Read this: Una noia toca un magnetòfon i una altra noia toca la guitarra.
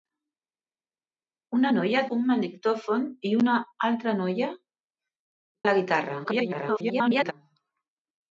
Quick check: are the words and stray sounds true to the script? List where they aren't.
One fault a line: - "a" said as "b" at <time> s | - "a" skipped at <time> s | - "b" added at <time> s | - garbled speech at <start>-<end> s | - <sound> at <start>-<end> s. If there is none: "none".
- "toca" skipped at 2.0 s
- "toca" skipped at 4.5 s
- garbled speech at 6.2-7.3 s